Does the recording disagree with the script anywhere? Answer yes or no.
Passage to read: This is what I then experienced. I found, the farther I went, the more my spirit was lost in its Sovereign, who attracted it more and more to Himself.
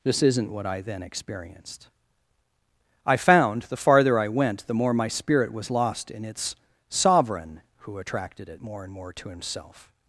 yes